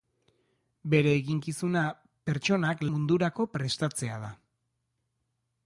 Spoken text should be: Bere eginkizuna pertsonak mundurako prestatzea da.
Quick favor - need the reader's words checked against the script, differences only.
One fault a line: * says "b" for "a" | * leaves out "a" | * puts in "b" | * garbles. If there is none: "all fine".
all fine